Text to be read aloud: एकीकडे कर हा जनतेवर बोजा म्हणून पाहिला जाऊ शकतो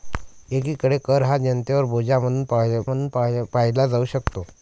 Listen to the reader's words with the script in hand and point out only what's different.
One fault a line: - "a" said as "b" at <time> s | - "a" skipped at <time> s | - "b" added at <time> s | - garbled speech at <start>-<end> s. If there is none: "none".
- "म्हणून" added at 2.8 s